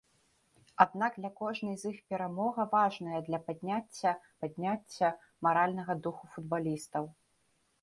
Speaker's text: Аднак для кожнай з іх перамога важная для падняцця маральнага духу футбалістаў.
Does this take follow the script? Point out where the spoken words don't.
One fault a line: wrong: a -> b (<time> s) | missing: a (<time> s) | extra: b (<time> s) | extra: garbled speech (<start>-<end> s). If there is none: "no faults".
extra: падняцця (4.4 s)